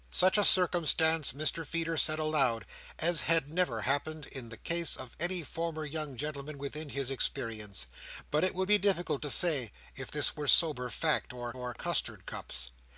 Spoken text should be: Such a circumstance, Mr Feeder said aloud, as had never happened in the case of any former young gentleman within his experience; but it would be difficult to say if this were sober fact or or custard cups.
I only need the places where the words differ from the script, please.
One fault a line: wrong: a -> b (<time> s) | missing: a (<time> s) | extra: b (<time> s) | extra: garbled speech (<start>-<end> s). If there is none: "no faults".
no faults